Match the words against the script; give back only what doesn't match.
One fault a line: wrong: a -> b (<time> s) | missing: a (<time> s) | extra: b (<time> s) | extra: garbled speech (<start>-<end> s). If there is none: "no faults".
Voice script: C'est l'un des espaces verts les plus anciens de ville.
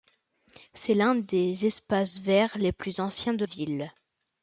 no faults